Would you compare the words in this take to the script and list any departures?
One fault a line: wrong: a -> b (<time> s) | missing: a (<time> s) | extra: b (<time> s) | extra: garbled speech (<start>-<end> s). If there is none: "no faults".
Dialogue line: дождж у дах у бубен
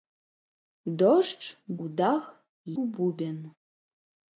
no faults